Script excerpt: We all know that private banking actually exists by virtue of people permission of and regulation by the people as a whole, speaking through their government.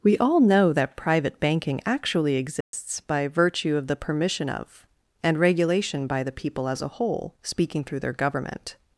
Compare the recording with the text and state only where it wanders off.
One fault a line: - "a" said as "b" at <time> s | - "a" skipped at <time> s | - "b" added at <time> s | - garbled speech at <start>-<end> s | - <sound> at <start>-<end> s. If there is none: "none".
- dropout at 2.6-2.7 s
- "people" said as "the" at 3.9 s